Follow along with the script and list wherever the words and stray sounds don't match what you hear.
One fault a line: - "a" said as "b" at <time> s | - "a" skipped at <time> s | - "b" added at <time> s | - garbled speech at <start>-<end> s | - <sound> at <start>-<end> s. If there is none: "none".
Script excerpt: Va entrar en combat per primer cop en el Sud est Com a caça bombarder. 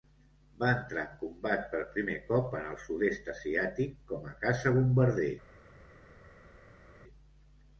- "Asiàtic" added at 3.4 s